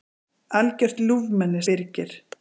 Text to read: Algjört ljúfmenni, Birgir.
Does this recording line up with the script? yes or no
yes